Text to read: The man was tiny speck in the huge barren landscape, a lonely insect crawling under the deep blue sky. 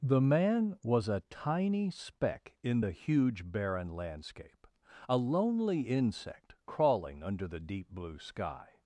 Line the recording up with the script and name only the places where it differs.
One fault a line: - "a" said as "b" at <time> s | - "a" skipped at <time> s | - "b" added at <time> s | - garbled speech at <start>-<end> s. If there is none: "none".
- "a" added at 1.1 s